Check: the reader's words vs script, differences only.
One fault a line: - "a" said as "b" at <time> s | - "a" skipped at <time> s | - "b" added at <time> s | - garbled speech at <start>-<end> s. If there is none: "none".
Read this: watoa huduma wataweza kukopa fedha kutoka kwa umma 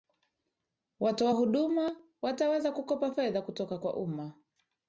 none